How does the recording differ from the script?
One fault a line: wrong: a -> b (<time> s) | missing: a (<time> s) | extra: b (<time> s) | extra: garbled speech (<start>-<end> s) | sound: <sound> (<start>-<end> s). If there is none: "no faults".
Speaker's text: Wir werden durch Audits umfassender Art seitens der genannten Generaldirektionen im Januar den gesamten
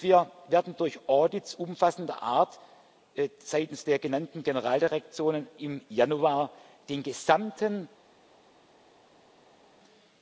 no faults